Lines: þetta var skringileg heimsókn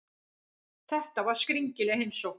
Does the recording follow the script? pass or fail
pass